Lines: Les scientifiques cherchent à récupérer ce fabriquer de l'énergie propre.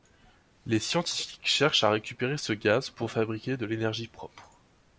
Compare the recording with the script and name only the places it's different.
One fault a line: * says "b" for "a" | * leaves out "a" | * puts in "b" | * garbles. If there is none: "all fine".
* puts in "gaz pour"